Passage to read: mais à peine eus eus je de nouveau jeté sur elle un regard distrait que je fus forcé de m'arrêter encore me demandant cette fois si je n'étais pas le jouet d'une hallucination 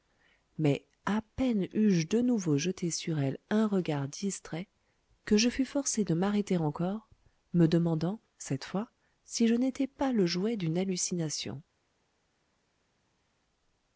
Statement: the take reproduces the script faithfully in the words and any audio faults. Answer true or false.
false